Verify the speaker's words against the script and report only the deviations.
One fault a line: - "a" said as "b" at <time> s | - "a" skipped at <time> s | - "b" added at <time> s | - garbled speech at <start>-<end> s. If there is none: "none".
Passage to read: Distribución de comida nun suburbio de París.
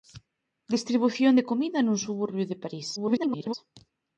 - garbled speech at 3.0-3.5 s